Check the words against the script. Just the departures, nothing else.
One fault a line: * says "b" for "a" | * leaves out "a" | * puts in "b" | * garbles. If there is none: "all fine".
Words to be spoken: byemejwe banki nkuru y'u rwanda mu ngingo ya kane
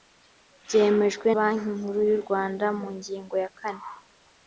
all fine